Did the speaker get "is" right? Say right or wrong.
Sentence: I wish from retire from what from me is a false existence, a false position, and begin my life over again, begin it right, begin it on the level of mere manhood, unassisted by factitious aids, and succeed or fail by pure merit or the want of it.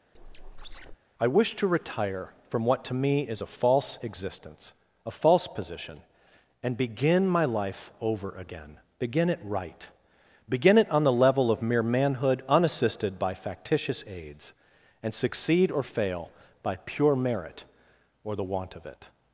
right